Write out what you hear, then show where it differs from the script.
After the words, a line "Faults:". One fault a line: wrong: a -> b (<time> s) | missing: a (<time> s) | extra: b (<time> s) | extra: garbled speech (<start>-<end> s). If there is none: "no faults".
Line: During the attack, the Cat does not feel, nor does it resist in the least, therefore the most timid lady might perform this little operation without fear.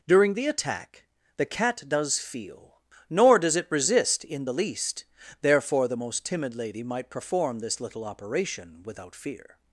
During the attack, the Cat does feel, nor does it resist in the least, therefore the most timid lady might perform this little operation without fear.
Faults:
missing: not (2.2 s)